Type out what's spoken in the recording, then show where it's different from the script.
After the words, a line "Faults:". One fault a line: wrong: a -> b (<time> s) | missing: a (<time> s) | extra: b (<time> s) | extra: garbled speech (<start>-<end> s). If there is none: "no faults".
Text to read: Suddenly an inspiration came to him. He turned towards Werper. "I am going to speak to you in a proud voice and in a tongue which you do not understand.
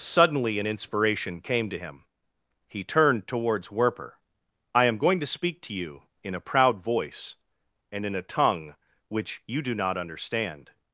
Suddenly an inspiration came to him. He turned towards Werper. "I am going to speak to you in a proud voice and in a tongue which you do not understand.
Faults:
no faults